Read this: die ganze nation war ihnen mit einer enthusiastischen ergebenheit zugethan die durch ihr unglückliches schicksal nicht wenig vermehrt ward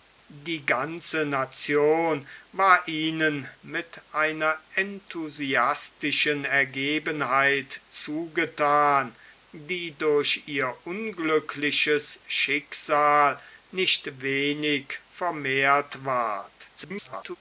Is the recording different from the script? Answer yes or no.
yes